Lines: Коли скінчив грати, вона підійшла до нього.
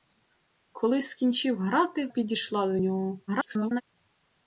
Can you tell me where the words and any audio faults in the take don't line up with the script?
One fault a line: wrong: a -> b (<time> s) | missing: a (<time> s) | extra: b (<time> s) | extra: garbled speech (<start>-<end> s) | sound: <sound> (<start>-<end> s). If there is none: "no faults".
missing: вона (2.1 s)
extra: garbled speech (3.3-3.8 s)